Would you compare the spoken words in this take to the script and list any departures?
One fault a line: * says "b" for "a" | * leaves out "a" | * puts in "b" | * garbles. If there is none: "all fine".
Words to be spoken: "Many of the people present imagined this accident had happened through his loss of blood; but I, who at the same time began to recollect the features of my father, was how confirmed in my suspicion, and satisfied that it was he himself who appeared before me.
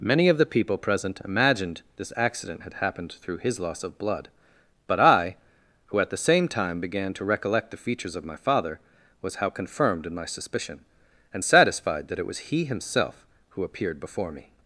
all fine